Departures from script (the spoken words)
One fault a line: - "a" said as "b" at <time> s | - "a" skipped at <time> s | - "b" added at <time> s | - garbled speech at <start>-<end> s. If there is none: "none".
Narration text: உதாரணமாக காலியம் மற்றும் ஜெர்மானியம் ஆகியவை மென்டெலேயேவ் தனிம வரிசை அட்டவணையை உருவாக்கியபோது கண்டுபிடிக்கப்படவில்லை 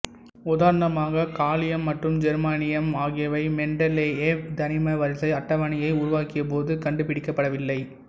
none